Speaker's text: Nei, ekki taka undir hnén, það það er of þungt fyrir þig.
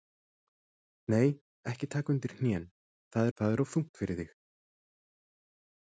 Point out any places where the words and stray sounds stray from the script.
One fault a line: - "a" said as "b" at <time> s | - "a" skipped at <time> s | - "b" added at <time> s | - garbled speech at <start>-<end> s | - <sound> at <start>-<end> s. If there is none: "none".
none